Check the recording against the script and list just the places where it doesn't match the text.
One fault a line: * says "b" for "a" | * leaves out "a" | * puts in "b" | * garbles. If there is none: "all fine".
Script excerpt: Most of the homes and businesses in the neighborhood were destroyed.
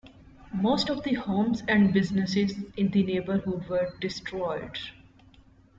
all fine